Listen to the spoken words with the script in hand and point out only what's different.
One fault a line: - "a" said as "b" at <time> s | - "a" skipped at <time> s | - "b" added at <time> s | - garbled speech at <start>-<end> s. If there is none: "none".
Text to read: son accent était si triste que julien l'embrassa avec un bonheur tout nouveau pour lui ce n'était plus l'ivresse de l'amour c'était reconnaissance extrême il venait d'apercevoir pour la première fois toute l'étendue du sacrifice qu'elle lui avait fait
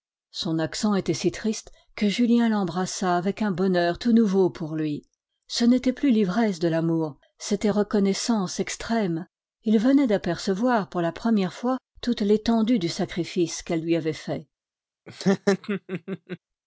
none